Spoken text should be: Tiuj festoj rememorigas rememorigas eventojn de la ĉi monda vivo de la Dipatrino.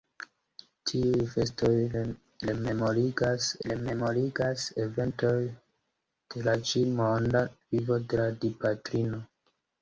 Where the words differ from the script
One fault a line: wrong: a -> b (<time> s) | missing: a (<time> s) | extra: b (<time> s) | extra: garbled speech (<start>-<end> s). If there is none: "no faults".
no faults